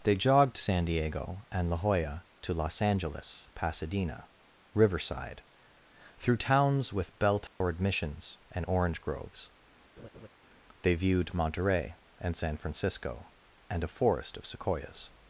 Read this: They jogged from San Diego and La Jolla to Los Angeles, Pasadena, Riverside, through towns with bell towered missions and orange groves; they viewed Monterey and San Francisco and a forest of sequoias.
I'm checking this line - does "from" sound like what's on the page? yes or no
no